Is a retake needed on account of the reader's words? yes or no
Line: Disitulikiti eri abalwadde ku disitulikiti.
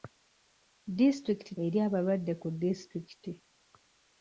no